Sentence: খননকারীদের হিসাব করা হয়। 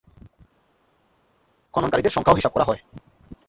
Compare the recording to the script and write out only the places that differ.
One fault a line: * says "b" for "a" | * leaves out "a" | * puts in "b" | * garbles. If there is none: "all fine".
* puts in "সংখ্যাও"